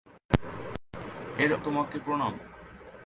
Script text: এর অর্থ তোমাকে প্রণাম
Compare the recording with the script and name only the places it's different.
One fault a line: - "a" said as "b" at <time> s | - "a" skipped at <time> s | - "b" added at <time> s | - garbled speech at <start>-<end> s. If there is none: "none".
- "অর্থ" skipped at 1.5 s